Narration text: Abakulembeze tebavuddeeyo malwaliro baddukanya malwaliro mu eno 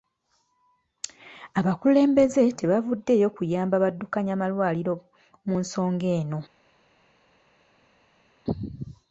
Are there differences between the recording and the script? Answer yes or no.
yes